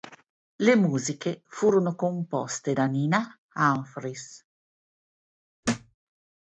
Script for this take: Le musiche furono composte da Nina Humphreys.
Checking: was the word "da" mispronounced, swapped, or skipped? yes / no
no